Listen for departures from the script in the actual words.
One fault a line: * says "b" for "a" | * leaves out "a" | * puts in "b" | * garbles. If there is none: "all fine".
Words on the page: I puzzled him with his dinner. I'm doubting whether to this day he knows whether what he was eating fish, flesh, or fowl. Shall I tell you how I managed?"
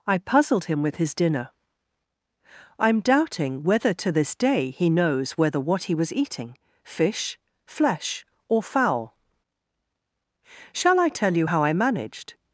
all fine